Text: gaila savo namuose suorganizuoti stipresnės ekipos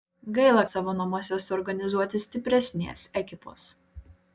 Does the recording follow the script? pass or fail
pass